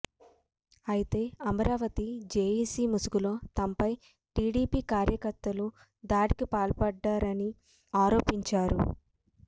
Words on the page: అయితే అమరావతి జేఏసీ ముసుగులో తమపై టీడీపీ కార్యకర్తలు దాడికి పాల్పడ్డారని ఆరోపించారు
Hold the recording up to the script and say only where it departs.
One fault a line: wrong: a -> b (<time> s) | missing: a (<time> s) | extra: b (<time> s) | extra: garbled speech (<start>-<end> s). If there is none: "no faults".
no faults